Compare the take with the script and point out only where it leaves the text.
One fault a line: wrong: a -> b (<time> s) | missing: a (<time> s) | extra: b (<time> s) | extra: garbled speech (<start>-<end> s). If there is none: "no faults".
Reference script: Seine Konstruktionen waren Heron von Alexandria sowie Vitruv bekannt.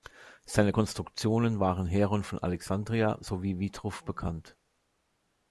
no faults